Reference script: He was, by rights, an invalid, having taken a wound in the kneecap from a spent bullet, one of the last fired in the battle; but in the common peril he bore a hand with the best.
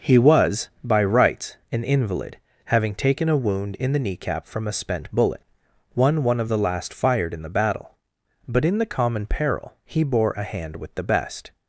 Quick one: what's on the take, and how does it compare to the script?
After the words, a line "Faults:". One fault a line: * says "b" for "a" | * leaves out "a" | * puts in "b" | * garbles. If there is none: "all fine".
He was, by rights, an invalid, having taken a wound in the kneecap from a spent bullet, one one of the last fired in the battle; but in the common peril he bore a hand with the best.
Faults:
* puts in "one"